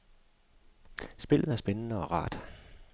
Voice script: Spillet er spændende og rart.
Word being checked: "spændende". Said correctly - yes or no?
yes